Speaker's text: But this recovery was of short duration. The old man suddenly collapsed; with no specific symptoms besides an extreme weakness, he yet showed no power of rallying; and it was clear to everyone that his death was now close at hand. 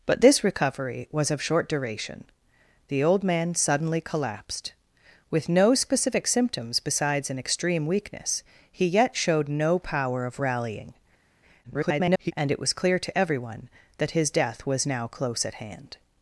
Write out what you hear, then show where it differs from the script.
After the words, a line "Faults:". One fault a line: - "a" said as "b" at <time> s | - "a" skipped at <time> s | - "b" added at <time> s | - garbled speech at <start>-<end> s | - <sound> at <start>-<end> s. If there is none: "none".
But this recovery was of short duration. The old man suddenly collapsed; with no specific symptoms besides an extreme weakness, he yet showed no power of rallying; [garbled] and it was clear to everyone that his death was now close at hand.
Faults:
- garbled speech at 11.6-12.3 s